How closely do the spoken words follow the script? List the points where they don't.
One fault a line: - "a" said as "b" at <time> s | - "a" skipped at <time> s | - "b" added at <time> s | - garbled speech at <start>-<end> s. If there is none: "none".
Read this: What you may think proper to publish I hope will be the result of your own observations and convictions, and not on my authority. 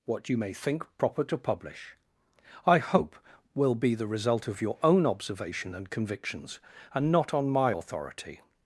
- "observations" said as "observation" at 5.0 s